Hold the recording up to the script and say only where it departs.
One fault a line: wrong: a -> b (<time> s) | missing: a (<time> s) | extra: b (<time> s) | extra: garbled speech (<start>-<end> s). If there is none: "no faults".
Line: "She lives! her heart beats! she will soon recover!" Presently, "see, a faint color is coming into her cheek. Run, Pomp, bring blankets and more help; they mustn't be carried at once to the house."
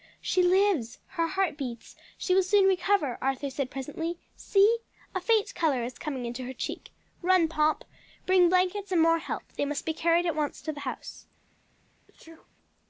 extra: Arthur said (3.2 s)
wrong: mustn't -> must (9.6 s)